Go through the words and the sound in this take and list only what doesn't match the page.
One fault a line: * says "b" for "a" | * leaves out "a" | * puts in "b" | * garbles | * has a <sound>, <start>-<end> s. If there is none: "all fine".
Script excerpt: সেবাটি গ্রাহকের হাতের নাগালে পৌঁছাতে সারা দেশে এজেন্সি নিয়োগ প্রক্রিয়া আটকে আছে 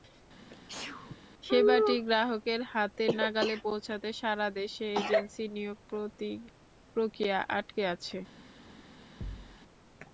* has a sneeze, 0.5-1.2 s
* has a thud, 9.2-9.6 s